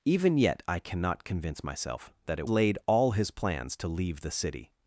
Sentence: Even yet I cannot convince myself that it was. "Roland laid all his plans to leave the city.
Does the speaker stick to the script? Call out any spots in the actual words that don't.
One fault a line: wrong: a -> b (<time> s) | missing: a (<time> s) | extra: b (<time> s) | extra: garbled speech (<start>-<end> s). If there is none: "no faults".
missing: was Roland (2.5 s)